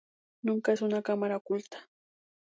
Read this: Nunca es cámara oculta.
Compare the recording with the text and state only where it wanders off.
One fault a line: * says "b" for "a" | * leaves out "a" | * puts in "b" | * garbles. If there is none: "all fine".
* puts in "una"